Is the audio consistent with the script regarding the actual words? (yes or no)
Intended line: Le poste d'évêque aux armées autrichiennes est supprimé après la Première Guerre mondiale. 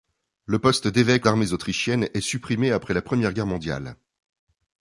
no